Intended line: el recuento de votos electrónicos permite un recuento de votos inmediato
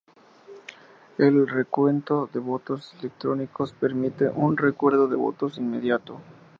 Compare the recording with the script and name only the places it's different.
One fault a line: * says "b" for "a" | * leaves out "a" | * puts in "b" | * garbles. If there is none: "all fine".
all fine